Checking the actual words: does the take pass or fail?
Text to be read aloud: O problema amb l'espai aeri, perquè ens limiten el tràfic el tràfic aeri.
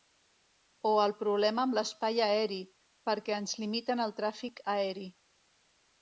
fail